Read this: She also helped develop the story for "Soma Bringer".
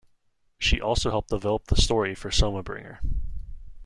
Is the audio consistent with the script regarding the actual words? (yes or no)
yes